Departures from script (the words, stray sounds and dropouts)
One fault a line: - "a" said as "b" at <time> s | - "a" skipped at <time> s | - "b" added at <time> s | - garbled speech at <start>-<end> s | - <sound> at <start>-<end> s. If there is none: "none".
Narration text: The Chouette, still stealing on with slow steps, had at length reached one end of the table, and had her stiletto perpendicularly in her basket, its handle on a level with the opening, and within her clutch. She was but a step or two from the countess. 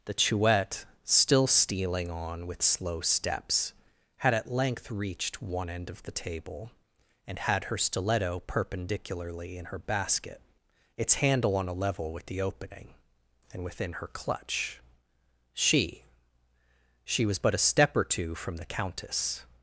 - "She" added at 17.0 s